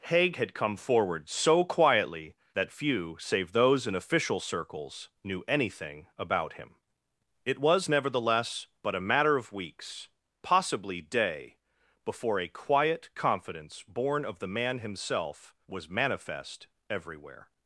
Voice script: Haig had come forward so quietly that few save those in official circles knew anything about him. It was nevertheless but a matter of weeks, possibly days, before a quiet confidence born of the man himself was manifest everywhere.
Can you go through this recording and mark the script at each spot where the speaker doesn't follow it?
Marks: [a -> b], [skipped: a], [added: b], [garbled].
Haig had come forward so quietly that few save those in official circles knew anything about him. It was nevertheless but a matter of weeks, possibly [days, -> day] before a quiet confidence born of the man himself was manifest everywhere.